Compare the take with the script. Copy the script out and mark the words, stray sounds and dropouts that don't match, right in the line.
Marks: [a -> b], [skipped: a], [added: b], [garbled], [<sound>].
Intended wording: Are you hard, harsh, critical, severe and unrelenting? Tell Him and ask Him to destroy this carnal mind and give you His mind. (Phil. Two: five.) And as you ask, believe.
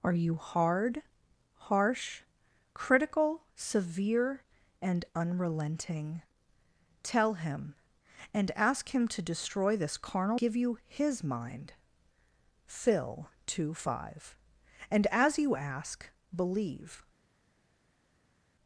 Are you hard, harsh, critical, severe and unrelenting? Tell Him and ask Him to destroy this carnal [skipped: mind and] give you His mind. (Phil. Two: five.) And as you ask, believe.